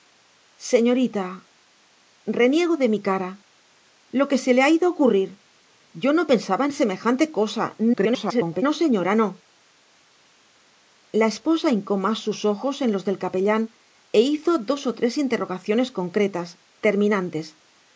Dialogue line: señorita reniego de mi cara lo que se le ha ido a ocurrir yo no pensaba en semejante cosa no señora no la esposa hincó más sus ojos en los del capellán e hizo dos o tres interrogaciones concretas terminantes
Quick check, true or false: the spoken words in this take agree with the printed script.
false